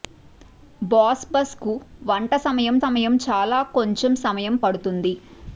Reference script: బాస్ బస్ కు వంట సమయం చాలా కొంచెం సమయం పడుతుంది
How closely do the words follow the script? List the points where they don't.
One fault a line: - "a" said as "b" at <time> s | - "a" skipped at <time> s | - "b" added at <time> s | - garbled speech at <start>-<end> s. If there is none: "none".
- "సమయం" added at 2.8 s